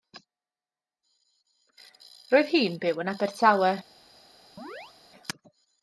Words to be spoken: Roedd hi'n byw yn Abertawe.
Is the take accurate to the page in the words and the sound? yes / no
no